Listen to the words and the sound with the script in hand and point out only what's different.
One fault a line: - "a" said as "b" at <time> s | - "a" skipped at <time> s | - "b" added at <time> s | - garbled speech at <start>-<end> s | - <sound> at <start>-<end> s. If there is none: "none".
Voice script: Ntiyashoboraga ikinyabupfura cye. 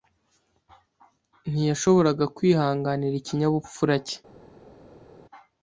- "kwihanganira" added at 2.4 s